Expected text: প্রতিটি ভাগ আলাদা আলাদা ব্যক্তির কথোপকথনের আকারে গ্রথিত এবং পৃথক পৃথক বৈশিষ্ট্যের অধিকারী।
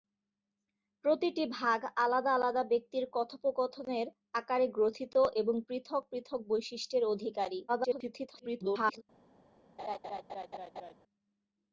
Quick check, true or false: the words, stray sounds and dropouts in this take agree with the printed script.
false